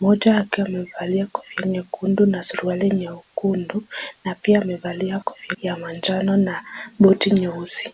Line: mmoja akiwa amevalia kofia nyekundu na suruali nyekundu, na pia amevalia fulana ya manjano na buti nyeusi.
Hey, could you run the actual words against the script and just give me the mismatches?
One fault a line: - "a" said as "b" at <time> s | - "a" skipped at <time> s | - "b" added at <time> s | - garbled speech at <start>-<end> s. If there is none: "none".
- "fulana" said as "kofia" at 5.2 s